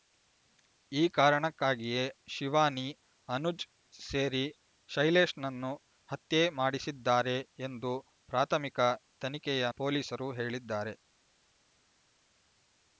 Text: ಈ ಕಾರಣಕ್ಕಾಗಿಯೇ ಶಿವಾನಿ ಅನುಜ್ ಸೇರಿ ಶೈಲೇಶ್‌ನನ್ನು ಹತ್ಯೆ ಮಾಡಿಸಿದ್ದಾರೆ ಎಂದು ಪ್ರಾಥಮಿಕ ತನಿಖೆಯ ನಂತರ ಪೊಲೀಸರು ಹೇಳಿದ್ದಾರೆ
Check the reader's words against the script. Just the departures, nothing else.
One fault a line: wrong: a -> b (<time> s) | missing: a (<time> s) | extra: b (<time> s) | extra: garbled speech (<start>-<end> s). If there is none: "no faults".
missing: ನಂತರ (9.7 s)